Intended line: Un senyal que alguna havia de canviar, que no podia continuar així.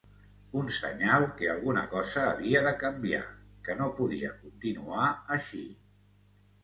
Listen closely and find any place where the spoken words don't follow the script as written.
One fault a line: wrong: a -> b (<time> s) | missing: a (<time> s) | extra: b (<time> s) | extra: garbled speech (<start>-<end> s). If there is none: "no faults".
extra: cosa (1.9 s)